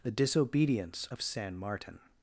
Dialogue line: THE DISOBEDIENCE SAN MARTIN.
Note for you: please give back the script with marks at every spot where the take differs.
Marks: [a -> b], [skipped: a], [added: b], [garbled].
THE DISOBEDIENCE [added: OF] SAN MARTIN.